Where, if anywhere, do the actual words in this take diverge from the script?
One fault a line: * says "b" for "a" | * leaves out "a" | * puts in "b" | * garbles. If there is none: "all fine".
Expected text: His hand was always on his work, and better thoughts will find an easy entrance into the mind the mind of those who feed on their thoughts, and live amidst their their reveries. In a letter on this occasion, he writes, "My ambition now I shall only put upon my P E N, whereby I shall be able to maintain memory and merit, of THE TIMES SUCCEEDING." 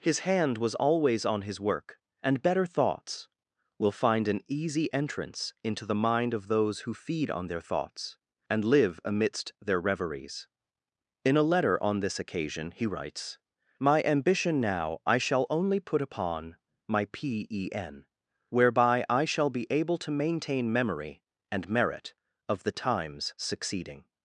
* leaves out "the mind"
* leaves out "their"